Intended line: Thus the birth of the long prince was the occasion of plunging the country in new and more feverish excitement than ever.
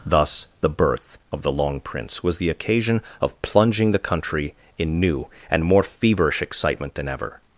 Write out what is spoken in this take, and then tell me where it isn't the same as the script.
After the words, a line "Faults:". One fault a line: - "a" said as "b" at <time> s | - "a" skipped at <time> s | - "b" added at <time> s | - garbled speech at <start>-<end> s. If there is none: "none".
Thus the birth of the long prince was the occasion of plunging the country in new and more feverish excitement than ever.
Faults:
none